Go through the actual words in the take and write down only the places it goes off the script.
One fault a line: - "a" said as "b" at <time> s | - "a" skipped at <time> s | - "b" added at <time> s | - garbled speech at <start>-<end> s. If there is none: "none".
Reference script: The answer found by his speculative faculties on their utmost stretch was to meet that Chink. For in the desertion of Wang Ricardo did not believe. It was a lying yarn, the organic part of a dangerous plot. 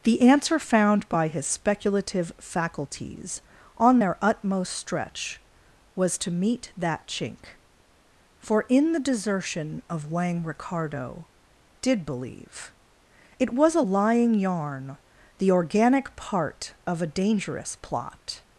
- "not" skipped at 12.1 s